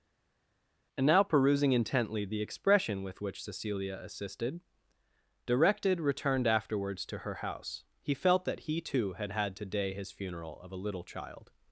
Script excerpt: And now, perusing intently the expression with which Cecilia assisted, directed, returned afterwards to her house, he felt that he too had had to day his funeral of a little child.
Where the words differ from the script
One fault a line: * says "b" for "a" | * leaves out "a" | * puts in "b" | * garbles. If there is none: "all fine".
all fine